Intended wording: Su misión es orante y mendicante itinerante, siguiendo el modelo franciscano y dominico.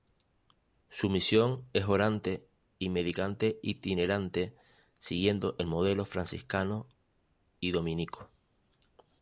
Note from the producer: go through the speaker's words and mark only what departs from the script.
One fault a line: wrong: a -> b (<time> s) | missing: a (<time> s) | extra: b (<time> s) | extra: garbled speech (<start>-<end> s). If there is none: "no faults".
no faults